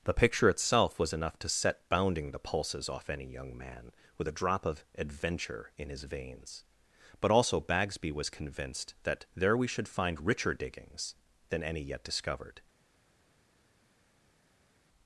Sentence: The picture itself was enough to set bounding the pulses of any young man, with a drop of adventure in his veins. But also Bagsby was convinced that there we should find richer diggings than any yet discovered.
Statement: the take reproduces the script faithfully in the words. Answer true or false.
false